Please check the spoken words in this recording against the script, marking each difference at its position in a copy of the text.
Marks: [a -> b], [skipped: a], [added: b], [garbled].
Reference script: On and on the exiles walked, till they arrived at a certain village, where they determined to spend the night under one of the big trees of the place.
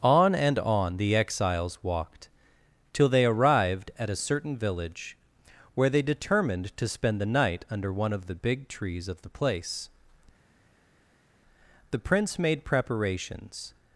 On and on the exiles walked, till they arrived at a certain village, where they determined to spend the night under one of the big trees of the place. [added: The prince made preparations]